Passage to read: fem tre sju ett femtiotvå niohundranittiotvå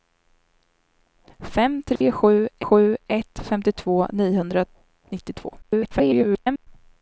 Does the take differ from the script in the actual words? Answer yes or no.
yes